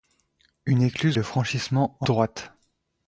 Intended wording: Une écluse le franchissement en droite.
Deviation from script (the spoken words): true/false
false